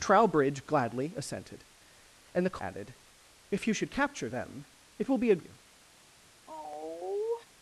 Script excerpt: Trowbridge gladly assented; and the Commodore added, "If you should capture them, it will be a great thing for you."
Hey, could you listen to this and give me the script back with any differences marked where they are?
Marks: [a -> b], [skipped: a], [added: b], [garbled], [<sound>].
Trowbridge gladly assented; and the [skipped: Commodore] added, "If you should capture them, it will be a [skipped: great thing for] you." [sigh]